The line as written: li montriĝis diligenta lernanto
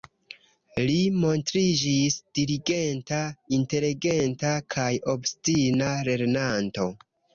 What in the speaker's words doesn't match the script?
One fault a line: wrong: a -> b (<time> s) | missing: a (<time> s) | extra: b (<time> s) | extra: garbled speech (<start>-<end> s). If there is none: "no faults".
extra: inteligenta kaj obstina (3.6 s)